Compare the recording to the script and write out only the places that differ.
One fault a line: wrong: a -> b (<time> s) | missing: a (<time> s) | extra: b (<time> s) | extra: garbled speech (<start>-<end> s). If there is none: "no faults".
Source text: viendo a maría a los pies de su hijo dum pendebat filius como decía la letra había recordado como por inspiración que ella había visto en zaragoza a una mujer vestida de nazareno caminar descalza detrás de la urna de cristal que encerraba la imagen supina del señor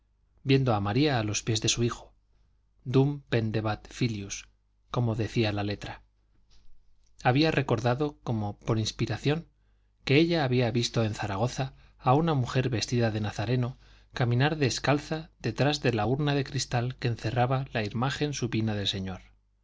no faults